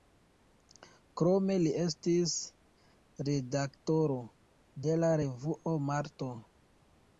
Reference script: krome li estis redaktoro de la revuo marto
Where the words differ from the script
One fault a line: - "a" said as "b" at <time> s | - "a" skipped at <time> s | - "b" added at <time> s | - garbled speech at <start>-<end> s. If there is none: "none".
none